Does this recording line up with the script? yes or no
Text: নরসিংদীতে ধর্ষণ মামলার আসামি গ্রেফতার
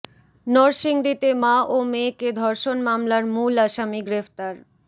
no